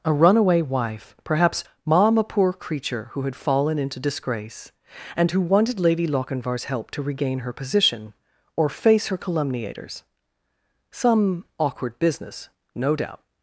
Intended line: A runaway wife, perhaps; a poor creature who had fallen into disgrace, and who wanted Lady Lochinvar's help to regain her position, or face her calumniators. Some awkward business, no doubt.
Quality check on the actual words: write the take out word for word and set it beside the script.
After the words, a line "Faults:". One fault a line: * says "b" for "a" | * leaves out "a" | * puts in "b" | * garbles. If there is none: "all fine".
A runaway wife, perhaps; mom a poor creature who had fallen into disgrace, and who wanted Lady Lochinvar's help to regain her position, or face her calumniators. Some awkward business, no doubt.
Faults:
* puts in "mom"